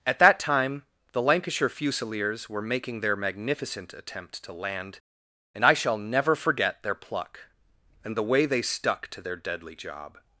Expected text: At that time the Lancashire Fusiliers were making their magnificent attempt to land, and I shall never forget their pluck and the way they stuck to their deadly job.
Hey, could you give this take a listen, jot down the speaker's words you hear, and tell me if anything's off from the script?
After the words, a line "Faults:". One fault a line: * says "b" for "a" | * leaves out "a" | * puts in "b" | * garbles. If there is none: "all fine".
At that time the Lancashire Fusiliers were making their magnificent attempt to land, and I shall never forget their pluck and the way they stuck to their deadly job.
Faults:
all fine